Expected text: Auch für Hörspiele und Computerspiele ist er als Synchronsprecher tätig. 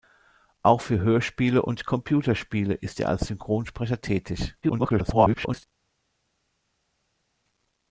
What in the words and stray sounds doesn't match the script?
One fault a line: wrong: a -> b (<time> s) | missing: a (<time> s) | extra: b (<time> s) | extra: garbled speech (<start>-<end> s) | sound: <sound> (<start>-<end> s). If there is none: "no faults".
extra: garbled speech (4.6-5.6 s)